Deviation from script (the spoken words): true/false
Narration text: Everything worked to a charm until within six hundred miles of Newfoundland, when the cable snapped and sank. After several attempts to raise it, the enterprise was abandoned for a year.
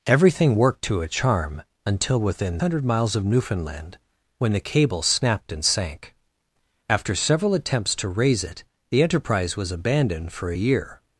true